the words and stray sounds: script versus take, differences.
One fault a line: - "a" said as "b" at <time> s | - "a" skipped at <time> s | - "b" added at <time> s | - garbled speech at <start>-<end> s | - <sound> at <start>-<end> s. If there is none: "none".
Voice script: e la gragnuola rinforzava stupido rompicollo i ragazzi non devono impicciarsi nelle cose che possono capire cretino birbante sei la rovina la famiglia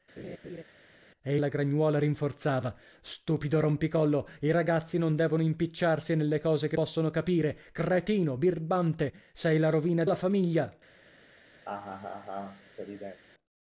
- laugh at 0.2-0.6 s
- laugh at 11.6-13.2 s